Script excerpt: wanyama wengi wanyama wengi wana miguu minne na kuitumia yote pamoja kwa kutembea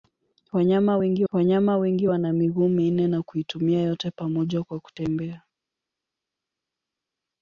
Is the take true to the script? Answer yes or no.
yes